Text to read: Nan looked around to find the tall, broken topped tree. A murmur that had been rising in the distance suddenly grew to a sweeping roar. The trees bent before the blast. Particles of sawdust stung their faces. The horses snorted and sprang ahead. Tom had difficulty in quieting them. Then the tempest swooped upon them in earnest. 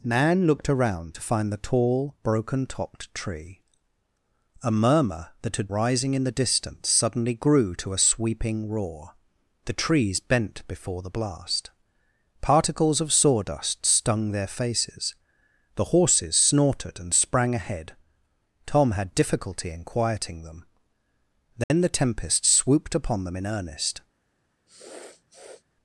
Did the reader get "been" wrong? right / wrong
wrong